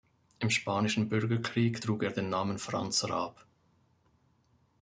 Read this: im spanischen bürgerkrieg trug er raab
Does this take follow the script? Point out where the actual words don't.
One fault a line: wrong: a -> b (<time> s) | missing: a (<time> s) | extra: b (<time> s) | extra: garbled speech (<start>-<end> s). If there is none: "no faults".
extra: den namen franz (2.1 s)